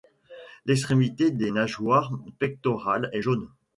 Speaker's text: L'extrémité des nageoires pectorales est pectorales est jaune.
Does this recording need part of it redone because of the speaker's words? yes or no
yes